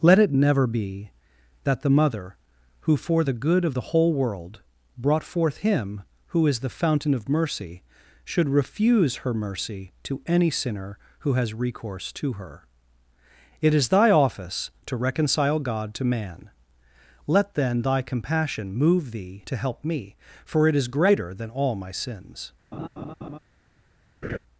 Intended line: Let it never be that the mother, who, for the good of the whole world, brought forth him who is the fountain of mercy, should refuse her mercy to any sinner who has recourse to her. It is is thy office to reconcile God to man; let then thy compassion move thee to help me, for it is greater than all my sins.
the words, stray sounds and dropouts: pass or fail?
fail